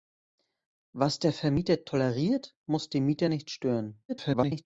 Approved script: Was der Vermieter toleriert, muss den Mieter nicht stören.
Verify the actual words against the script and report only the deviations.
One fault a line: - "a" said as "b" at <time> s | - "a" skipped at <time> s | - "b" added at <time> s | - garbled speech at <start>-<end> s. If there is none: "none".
- garbled speech at 4.1-4.7 s